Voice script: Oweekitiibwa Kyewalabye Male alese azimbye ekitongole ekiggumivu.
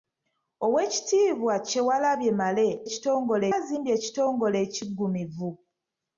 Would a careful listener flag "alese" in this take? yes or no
yes